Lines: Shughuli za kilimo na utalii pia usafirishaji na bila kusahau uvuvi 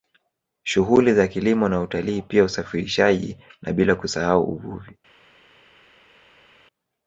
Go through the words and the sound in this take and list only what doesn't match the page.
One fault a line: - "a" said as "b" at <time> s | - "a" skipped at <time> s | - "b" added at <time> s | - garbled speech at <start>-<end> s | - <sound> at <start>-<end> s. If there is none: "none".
none